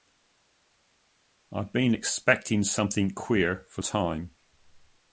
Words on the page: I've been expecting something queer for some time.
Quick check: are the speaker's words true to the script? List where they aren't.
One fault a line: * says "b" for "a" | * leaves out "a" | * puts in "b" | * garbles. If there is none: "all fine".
* leaves out "some"